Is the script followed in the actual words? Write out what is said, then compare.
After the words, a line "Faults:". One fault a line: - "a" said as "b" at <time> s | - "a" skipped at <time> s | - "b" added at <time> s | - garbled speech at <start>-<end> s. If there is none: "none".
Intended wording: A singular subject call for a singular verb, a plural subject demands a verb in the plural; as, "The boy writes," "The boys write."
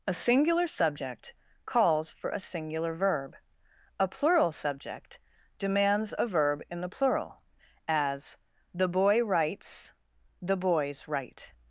A singular subject calls for a singular verb, a plural subject demands a verb in the plural; as, "The boy writes," "The boys write."
Faults:
- "call" said as "calls" at 1.7 s